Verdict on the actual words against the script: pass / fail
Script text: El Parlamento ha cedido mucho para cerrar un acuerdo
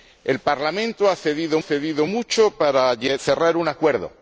fail